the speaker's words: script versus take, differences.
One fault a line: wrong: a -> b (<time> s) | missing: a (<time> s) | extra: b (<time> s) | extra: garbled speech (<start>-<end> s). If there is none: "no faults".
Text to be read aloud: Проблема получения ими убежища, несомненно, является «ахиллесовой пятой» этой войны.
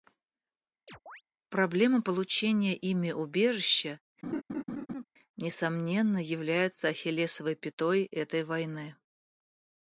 no faults